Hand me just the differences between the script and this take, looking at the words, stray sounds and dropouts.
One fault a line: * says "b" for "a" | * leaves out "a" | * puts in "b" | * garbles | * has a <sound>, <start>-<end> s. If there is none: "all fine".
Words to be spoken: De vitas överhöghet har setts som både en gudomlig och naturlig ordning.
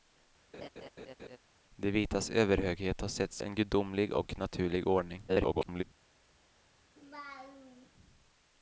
* has a laugh, 0.5-1.4 s
* leaves out "som både"
* garbles
* has a laugh, 7.0-7.9 s